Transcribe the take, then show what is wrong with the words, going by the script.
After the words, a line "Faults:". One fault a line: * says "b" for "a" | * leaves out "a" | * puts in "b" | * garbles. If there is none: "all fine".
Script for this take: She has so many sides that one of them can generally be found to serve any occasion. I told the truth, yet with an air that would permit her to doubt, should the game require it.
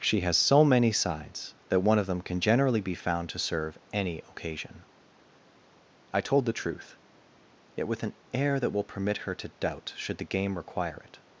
She has so many sides that one of them can generally be found to serve any occasion. I told the truth, yet with an air that will permit her to doubt, should the game require it.
Faults:
* says "will" for "would"